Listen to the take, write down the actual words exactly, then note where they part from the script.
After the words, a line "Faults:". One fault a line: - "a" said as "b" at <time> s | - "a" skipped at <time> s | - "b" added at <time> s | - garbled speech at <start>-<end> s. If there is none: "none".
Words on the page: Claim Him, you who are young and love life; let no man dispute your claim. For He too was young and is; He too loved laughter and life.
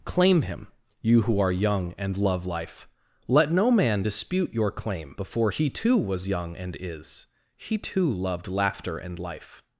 Claim Him, you who are young and love life; let no man dispute your claim. Before He too was young and is; He too loved laughter and life.
Faults:
- "For" said as "Before" at 5.2 s